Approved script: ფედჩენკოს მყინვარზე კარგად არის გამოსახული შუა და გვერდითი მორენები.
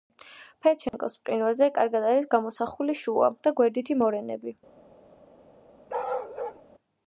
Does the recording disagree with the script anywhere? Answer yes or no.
no